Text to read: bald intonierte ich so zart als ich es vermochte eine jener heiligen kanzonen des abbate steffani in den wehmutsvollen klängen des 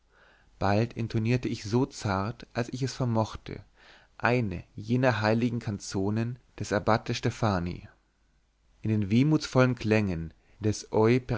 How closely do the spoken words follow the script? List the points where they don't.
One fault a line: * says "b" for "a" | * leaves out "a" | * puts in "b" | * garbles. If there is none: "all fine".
all fine